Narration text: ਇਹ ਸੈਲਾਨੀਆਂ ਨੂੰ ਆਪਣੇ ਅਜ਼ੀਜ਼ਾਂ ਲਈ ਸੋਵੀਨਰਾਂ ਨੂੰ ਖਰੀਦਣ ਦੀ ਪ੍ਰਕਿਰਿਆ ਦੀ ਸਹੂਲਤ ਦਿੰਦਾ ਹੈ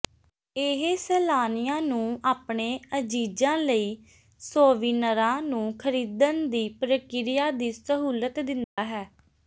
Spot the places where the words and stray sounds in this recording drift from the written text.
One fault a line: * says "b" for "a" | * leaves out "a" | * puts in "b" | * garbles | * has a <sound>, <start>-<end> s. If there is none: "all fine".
* has a dropout, 8.6-8.8 s